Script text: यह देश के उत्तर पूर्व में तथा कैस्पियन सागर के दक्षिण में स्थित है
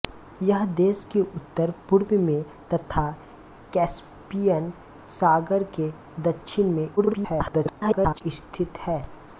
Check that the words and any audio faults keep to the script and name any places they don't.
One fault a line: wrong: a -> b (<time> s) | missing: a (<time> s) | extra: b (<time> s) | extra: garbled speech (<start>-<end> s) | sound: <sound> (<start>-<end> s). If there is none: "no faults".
extra: garbled speech (7.0-8.2 s)